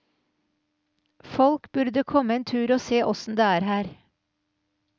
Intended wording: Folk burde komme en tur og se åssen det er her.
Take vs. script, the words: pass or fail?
pass